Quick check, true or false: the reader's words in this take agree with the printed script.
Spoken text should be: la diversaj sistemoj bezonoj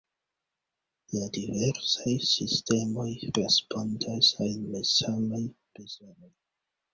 false